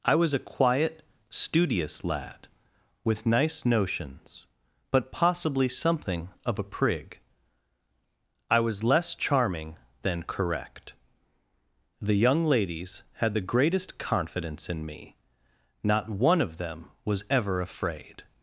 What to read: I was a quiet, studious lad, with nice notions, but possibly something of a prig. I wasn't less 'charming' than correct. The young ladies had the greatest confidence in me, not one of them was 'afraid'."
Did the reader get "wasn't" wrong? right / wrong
wrong